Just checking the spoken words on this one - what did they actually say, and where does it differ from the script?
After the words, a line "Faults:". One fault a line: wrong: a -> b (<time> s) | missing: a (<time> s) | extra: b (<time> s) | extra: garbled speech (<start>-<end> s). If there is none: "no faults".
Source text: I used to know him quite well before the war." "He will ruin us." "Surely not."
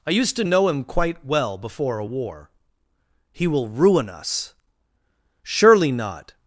I used to know him quite well before a war." "He will ruin us." "Surely not."
Faults:
wrong: the -> a (2.0 s)